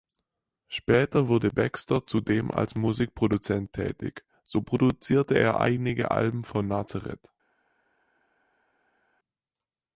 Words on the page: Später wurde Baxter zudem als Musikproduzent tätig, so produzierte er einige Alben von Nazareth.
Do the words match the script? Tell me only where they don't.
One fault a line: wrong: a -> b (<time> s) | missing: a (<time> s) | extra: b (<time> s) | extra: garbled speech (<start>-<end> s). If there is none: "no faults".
no faults